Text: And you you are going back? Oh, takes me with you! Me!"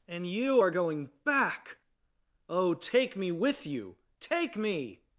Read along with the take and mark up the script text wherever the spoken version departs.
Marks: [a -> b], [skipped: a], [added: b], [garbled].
And you [skipped: you] are going back? Oh, [takes -> take] me with you! [added: Take] Me!"